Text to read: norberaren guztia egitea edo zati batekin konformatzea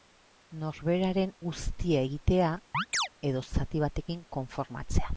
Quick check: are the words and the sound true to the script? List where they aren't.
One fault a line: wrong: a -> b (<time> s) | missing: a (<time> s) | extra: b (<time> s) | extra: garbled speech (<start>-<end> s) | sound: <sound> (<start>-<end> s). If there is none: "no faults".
sound: chirp (2.7-3.1 s)